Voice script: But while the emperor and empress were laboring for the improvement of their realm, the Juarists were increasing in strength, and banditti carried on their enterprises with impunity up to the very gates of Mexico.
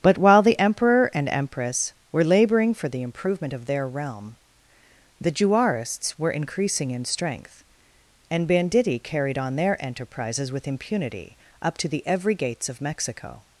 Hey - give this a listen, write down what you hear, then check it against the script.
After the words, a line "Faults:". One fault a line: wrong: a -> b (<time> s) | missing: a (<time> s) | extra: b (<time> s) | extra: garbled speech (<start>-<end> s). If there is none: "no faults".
But while the emperor and empress were laboring for the improvement of their realm, the Juarists were increasing in strength, and banditti carried on their enterprises with impunity up to the every gates of Mexico.
Faults:
wrong: very -> every (12.1 s)